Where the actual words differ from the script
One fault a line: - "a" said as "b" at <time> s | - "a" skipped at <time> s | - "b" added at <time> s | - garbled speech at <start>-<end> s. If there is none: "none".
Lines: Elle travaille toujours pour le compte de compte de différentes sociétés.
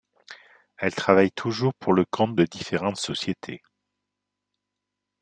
- "compte de" skipped at 2.4 s